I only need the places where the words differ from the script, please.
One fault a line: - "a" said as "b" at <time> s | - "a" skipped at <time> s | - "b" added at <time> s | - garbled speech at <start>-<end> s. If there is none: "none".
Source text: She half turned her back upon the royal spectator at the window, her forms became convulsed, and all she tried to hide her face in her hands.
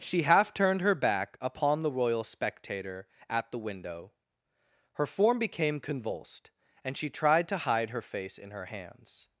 - "forms" said as "form" at 5.0 s
- "all" skipped at 7.0 s